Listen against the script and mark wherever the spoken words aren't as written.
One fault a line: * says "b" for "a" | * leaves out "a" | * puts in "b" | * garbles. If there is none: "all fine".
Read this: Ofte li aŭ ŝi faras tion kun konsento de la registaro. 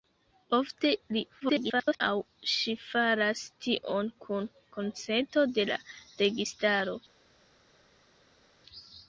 * garbles